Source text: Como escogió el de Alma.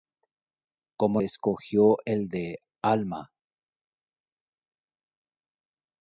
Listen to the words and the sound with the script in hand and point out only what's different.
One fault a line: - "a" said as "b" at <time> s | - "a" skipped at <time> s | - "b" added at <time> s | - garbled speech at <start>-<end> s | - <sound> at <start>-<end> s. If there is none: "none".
none